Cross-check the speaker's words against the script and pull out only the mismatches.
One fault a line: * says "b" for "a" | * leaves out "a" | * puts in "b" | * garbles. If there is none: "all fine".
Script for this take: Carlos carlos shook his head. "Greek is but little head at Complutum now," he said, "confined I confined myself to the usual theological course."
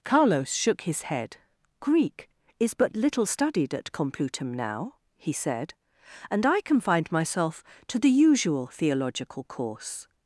* leaves out "carlos"
* says "studied" for "head"
* says "and" for "confined"